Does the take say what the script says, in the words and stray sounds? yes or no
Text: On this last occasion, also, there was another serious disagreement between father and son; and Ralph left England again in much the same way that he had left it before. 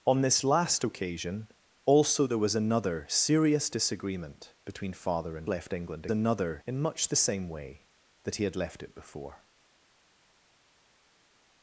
no